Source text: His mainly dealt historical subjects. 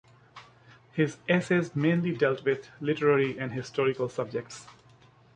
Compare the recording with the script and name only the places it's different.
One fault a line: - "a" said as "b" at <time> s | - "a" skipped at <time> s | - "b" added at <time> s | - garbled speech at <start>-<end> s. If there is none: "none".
- "essays" added at 1.3 s
- "with literary and" added at 2.4 s